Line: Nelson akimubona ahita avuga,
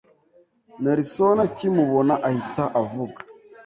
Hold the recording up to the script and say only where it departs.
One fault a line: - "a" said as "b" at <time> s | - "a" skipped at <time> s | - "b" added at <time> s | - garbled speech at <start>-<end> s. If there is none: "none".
none